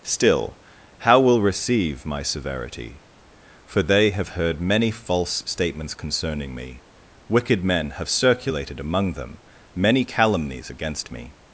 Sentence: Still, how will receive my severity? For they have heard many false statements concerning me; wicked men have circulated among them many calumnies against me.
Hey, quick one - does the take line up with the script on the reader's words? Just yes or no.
yes